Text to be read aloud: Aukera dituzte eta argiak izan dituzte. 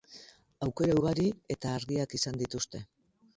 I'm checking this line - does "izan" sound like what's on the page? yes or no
yes